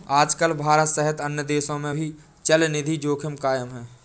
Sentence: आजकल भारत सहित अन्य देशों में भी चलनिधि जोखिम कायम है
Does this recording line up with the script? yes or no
yes